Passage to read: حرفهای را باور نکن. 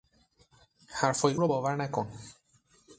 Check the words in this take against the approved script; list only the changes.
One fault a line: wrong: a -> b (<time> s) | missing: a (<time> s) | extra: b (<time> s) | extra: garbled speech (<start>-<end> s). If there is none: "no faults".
no faults